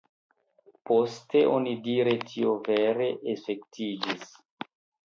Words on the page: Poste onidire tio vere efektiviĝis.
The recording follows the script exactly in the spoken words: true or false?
true